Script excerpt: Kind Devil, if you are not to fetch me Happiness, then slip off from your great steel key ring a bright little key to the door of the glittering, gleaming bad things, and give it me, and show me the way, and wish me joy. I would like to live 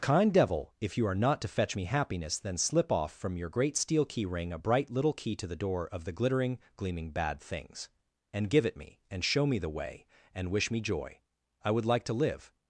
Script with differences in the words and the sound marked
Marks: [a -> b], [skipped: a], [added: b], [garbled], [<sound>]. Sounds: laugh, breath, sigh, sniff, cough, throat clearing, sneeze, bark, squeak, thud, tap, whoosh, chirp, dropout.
Kind Devil, if you are not to fetch me Happiness, then slip off from your great steel key ring a bright little key to the door of the glittering, gleaming bad things, and give it me, and show me the way, and wish me joy. I would like to live